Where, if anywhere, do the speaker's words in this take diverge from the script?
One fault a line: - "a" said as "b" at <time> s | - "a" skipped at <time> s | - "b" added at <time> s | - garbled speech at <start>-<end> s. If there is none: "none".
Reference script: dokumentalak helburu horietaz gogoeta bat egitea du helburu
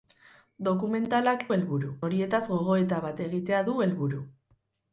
none